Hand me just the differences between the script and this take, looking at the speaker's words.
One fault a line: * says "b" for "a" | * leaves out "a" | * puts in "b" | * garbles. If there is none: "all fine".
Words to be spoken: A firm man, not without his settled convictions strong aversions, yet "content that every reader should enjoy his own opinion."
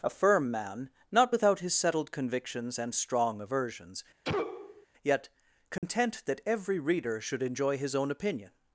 * puts in "and"